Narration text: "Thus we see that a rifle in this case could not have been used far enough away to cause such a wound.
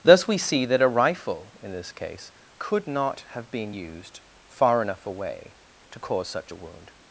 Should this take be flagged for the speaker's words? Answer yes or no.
no